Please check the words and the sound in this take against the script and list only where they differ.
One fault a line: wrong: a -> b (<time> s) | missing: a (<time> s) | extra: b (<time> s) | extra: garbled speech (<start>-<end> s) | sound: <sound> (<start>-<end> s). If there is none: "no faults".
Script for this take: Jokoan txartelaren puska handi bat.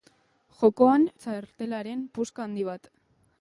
no faults